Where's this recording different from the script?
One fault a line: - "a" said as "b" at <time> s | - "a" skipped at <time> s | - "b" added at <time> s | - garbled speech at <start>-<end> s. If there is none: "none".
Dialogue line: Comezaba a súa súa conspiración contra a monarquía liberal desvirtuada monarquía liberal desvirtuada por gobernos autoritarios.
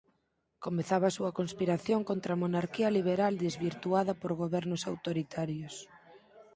- "súa" skipped at 1.3 s
- "monarquía liberal desvirtuada" skipped at 4.1 s